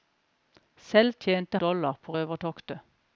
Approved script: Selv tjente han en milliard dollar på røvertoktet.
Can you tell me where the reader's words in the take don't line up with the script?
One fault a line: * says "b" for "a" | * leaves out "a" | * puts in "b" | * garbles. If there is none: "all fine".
* leaves out "han en milliard"